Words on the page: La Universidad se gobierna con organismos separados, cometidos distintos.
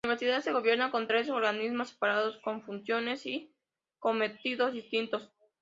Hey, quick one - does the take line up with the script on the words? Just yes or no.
no